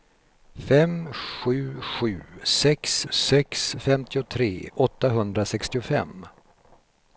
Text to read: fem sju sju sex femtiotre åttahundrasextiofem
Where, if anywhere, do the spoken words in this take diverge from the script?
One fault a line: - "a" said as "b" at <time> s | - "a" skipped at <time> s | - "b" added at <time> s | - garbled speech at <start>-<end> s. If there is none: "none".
- "sex" added at 3.1 s